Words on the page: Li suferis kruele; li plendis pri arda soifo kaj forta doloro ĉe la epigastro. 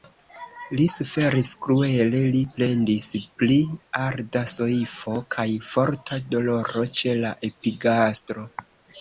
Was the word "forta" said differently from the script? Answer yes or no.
no